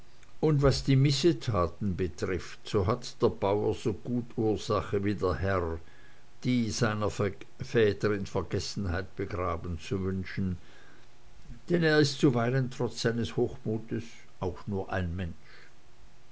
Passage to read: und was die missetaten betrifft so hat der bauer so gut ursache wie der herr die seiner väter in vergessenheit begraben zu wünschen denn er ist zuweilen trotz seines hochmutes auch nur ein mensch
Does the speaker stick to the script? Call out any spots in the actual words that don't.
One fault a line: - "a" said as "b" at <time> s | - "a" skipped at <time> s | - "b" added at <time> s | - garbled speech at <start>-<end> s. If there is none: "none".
none